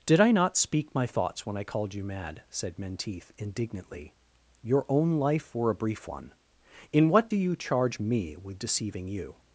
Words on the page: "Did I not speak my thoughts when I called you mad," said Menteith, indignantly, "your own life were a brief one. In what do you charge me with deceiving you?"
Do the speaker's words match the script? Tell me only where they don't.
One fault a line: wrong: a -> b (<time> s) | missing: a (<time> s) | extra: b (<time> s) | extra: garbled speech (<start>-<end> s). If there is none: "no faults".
no faults